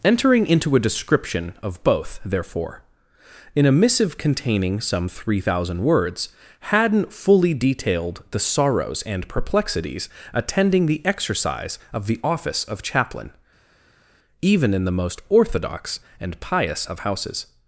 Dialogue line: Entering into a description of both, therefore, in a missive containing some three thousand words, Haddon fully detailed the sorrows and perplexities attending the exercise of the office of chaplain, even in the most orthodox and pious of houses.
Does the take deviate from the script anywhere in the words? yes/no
no